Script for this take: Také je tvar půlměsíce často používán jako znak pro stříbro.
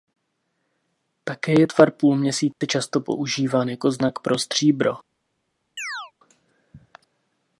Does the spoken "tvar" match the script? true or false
true